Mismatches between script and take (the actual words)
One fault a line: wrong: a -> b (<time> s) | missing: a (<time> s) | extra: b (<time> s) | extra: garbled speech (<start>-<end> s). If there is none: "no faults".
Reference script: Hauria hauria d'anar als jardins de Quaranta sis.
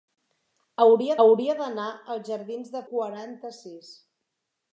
no faults